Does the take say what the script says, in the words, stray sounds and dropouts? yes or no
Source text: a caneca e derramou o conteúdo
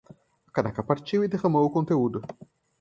no